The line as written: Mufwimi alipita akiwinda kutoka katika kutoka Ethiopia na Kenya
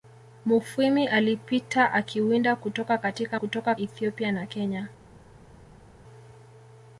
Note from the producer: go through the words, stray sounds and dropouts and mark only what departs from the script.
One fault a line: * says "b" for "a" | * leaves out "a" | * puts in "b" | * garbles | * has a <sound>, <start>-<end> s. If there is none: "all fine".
all fine